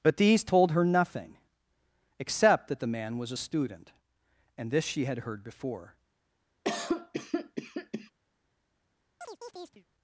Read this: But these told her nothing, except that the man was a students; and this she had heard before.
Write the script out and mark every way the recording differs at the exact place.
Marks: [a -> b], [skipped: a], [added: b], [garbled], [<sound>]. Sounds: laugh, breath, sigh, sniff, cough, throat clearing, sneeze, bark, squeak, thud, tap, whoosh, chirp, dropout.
But these told her nothing, except that the man was a [students; -> student] and this she had heard before. [cough] [chirp]